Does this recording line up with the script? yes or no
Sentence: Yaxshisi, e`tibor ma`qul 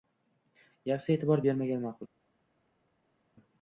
no